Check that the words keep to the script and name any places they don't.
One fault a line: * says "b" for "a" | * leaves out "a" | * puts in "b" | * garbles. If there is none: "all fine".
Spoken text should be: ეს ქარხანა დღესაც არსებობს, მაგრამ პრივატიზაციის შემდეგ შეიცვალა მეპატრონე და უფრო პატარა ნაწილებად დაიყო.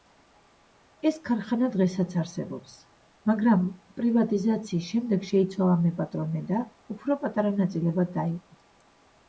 all fine